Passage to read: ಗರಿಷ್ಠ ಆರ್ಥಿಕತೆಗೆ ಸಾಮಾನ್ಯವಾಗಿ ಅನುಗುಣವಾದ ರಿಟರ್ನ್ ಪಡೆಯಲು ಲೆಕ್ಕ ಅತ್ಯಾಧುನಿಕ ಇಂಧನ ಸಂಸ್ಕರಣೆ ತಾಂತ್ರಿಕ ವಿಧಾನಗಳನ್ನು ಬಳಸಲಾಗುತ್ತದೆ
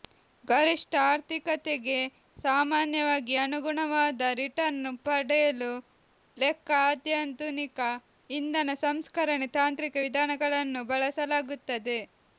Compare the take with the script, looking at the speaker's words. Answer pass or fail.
pass